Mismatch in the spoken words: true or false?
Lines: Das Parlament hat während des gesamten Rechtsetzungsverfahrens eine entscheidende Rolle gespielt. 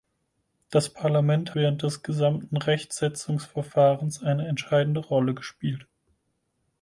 true